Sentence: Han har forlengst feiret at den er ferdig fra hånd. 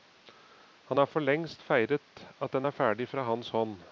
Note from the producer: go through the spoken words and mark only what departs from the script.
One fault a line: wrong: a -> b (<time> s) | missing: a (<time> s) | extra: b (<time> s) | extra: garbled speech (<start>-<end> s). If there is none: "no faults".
extra: hans (3.2 s)